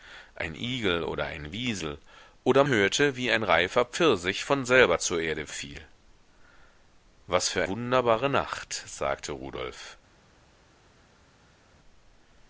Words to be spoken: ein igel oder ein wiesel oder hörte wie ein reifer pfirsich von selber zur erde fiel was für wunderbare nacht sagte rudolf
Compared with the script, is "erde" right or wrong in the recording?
right